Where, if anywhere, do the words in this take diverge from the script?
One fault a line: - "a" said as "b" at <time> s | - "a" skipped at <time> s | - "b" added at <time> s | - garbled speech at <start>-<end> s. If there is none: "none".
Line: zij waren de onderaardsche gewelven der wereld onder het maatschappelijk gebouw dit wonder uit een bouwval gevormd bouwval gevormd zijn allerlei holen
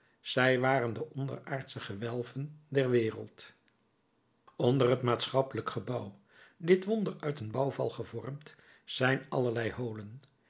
- "bouwval gevormd" skipped at 8.5 s